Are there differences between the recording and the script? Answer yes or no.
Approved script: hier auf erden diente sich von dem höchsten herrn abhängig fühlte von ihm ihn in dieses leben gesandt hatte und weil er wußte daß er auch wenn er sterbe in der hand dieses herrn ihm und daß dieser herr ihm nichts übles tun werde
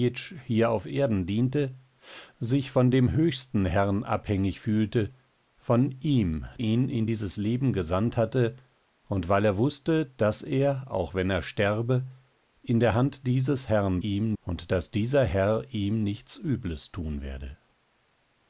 no